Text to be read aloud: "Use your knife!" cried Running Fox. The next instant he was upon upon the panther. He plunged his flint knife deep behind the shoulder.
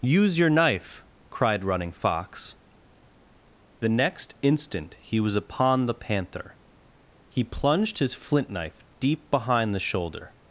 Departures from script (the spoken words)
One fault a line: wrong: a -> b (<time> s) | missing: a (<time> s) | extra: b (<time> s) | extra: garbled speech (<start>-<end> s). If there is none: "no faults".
missing: upon (5.8 s)